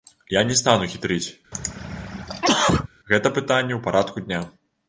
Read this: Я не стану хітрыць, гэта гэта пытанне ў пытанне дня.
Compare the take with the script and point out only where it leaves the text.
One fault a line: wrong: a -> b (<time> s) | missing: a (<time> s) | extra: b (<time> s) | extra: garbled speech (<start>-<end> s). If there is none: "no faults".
missing: гэта (3.3 s)
wrong: пытанне -> парадку (3.9 s)